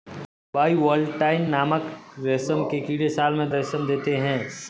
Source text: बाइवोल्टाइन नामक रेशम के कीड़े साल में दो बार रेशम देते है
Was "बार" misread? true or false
true